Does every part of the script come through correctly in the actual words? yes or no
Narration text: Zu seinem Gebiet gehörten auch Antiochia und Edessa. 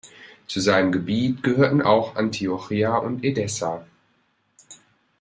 yes